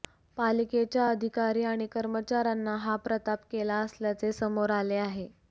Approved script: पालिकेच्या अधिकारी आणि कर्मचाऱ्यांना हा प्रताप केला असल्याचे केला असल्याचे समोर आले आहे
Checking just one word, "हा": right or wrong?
right